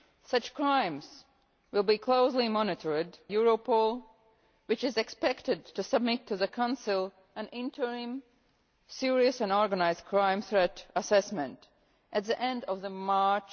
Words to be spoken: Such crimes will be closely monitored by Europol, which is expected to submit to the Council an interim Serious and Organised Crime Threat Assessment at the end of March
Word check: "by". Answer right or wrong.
wrong